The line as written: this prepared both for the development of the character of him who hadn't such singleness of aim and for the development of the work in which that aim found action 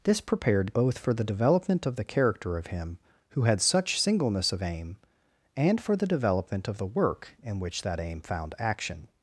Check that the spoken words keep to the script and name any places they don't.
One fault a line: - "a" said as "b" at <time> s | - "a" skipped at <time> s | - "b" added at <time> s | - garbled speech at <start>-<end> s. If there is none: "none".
- "hadn't" said as "had" at 3.4 s